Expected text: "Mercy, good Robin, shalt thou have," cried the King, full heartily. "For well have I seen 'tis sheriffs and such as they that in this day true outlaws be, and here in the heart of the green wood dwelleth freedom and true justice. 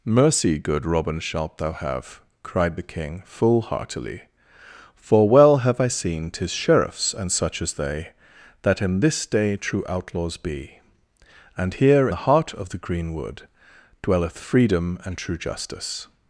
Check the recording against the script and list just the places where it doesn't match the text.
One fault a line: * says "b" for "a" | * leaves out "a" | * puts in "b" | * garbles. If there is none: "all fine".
* leaves out "in"